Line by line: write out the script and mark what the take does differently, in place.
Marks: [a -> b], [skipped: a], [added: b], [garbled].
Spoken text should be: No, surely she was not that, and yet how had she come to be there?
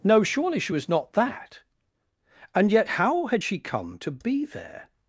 No, surely she was not that, and yet how had she come to be there?